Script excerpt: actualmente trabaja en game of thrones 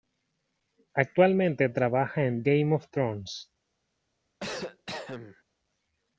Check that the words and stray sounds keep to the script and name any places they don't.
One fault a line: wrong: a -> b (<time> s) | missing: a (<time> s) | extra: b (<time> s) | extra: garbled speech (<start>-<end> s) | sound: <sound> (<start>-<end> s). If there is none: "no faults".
sound: cough (4.4-5.4 s)